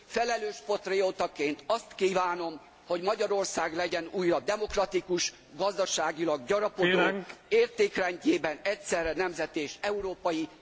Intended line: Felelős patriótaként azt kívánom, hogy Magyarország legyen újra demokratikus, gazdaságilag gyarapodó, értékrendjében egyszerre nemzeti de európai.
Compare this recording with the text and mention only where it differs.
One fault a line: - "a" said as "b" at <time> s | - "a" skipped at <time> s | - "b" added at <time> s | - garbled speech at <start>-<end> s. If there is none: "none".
- "de" said as "és" at 9.6 s